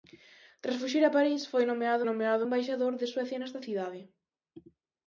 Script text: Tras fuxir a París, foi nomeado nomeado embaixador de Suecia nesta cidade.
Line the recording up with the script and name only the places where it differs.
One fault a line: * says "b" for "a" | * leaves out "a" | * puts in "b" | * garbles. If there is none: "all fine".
all fine